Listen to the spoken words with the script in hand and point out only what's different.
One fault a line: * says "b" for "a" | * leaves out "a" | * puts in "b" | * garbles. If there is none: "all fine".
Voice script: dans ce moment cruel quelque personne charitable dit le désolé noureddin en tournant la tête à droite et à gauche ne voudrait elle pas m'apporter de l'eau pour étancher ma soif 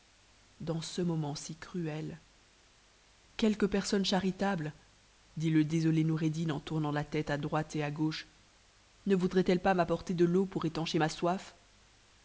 * puts in "si"